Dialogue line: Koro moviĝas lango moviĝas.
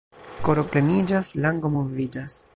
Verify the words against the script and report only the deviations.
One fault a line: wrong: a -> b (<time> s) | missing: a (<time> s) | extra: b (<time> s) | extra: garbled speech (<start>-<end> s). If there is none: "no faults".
wrong: moviĝas -> pleniĝas (0.8 s)